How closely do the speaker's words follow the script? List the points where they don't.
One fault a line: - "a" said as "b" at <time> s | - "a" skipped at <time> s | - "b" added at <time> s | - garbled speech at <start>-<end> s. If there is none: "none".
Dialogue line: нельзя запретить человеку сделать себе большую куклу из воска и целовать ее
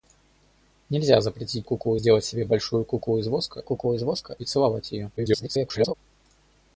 - "человеку" said as "куклу" at 1.6 s
- "куклу из воска" added at 3.6 s
- garbled speech at 5.2-5.9 s